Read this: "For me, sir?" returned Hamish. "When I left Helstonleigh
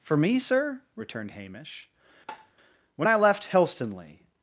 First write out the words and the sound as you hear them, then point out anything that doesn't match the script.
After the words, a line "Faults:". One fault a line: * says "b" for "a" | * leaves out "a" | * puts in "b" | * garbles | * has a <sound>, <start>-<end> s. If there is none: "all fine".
"For me, sir?" returned Hamish. "When I left Helstonleigh
Faults:
* has a tap, 2.3-2.5 s